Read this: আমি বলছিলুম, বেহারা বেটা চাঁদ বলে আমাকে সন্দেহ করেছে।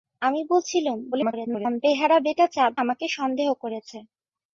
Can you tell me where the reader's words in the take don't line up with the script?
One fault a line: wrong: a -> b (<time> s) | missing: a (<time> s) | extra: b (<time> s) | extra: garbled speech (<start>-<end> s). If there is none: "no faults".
extra: garbled speech (1.1-1.8 s)
missing: বলে (2.7 s)